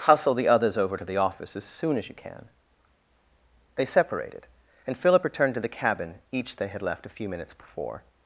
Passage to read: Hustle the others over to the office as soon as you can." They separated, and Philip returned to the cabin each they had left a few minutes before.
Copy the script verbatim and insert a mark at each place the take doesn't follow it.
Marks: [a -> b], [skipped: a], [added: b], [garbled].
Hustle the others over to the office as soon as you can." They separated, and Philip returned to the cabin each they had left a few minutes before.